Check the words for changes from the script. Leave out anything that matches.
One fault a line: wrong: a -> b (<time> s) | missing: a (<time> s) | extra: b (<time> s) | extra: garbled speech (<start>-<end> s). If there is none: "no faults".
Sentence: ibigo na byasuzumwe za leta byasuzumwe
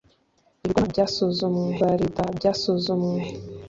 no faults